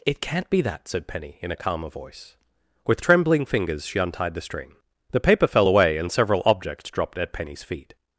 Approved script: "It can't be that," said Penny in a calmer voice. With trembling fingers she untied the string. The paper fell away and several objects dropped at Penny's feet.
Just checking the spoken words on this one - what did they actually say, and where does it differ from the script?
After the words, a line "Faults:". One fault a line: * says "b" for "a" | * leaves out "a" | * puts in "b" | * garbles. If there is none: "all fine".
"It can't be that," said Penny in a calmer voice. With trembling fingers she untied the string. The paper fell away and several objects dropped at Penny's feet.
Faults:
all fine